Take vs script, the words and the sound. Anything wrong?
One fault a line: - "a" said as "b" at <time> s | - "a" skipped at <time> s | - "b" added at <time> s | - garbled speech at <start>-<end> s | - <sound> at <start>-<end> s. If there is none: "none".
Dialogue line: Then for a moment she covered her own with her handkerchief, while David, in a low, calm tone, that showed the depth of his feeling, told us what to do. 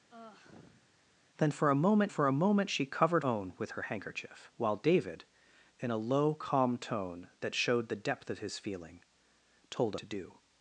- sigh at 0.1-0.9 s
- "for a moment" added at 2.1 s
- "her" skipped at 3.2 s
- "us what" skipped at 10.0 s